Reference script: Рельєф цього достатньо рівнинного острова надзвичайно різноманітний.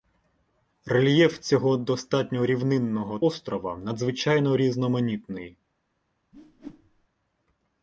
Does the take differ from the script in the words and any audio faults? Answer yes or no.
yes